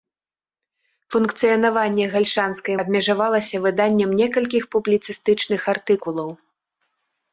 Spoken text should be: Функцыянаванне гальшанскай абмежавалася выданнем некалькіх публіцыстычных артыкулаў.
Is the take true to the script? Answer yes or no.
yes